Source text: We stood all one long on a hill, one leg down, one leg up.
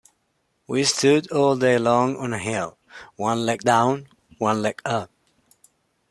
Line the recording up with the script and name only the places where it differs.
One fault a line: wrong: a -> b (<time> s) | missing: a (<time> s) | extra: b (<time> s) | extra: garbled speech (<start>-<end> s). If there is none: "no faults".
wrong: one -> day (1.6 s)